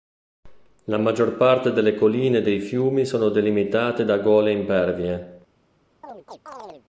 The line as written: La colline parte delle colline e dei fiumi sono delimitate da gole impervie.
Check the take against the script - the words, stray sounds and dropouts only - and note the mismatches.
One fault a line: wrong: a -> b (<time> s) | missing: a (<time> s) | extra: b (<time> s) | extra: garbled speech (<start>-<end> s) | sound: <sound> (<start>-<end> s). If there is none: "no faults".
wrong: colline -> maggior (1.0 s)
sound: chirp (6.0-6.9 s)